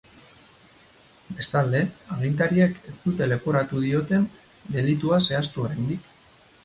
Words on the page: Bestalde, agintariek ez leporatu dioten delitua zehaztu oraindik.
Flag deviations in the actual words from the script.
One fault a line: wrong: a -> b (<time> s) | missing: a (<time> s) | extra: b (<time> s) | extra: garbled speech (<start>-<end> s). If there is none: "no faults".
extra: dute (3.0 s)